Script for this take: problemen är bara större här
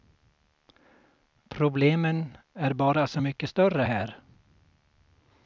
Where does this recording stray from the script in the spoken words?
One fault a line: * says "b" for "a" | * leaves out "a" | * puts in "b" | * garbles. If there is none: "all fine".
* puts in "så mycket"